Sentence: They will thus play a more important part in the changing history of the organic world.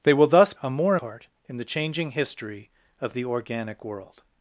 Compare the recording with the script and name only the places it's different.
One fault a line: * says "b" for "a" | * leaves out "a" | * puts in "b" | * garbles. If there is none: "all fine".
* leaves out "play"
* leaves out "important"